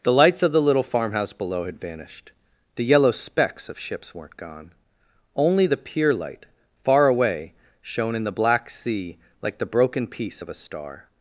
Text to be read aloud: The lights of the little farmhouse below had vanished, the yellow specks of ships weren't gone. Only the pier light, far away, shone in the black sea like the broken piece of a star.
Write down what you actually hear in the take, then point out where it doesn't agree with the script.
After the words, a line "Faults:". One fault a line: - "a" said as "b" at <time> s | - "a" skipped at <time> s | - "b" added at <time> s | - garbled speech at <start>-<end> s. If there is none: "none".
The lights of the little farmhouse below had vanished, the yellow specks of ships weren't gone. Only the pier light, far away, shone in the black sea like the broken piece of a star.
Faults:
none